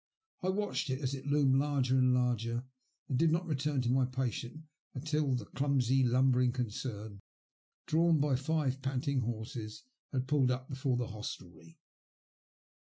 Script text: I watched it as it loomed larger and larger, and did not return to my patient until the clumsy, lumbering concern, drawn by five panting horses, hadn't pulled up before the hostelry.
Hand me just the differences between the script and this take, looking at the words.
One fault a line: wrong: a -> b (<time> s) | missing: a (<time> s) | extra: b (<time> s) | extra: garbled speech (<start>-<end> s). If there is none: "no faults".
wrong: hadn't -> had (10.1 s)